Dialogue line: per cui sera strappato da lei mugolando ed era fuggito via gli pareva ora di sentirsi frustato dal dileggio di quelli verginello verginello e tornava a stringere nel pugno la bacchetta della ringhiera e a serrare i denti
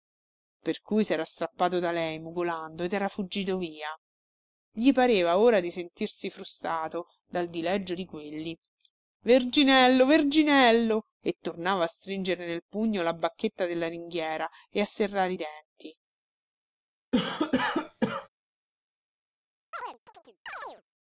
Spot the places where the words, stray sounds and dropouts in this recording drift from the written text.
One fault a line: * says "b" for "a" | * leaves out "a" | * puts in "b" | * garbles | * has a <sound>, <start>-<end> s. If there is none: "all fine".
* has a cough, 17.1-18.3 s
* has a chirp, 19.7-20.8 s